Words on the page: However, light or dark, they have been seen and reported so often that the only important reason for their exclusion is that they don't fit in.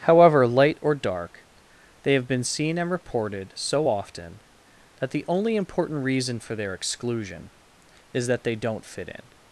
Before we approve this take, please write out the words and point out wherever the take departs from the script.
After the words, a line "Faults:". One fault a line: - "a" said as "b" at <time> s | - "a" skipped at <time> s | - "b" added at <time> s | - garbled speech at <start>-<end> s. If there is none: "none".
However, light or dark, they have been seen and reported so often that the only important reason for their exclusion is that they don't fit in.
Faults:
none